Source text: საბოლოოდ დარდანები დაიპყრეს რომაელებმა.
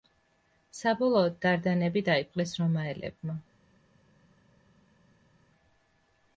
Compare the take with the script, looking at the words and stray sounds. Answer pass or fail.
pass